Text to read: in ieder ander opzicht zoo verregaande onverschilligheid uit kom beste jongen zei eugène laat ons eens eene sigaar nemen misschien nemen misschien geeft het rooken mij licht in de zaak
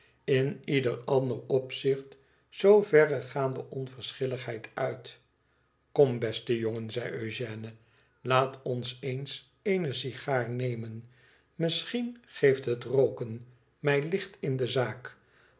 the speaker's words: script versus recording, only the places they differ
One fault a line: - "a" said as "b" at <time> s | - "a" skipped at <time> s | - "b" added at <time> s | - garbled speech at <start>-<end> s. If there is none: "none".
- "nemen misschien" skipped at 12.2 s